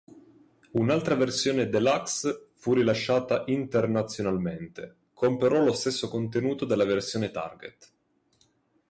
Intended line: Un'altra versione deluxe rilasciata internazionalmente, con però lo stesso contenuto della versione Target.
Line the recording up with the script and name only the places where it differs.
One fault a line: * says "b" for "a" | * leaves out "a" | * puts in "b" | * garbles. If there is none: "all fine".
* puts in "fu"